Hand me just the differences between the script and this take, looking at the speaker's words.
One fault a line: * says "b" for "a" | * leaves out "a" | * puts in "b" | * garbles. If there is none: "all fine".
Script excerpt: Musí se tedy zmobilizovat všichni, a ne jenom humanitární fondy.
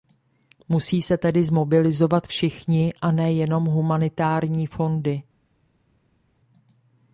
all fine